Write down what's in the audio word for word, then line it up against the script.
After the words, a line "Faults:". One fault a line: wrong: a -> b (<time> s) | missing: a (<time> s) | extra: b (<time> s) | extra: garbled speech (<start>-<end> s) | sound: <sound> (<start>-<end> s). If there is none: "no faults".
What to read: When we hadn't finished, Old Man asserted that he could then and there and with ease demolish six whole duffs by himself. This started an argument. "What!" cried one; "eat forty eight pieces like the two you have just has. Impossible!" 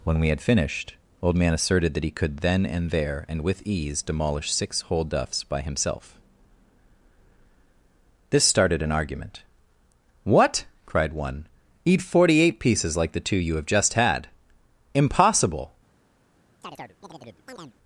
When we had finished, Old Man asserted that he could then and there and with ease demolish six whole duffs by himself. This started an argument. "What!" cried one; "eat forty eight pieces like the two you have just had. Impossible!"
Faults:
wrong: hadn't -> had (0.3 s)
wrong: has -> had (13.9 s)
sound: chirp (16.6-17.8 s)